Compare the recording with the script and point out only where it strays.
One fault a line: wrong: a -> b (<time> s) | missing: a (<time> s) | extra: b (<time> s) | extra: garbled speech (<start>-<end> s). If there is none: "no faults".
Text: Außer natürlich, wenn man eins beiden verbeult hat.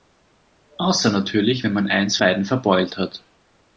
no faults